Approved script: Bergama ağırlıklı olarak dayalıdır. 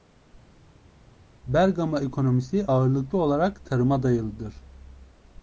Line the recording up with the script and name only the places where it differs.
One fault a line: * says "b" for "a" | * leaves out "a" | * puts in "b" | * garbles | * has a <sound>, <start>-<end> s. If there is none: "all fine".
* puts in "ekonomisi"
* puts in "tarıma"